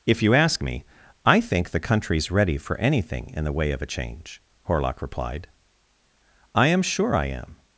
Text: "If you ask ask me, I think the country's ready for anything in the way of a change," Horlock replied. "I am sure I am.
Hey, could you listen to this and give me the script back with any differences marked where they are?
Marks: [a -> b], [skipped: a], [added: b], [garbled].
"If you ask [skipped: ask] me, I think the country's ready for anything in the way of a change," Horlock replied. "I am sure I am.